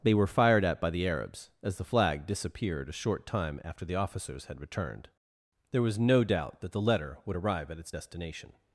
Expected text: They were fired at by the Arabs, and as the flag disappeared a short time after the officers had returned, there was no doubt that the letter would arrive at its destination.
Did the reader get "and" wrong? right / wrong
wrong